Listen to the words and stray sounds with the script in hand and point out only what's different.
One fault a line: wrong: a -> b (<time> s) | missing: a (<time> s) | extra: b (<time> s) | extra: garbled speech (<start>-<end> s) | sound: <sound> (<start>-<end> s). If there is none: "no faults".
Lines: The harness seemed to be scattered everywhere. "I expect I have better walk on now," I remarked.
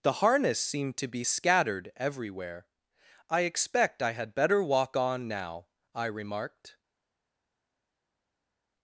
wrong: have -> had (4.1 s)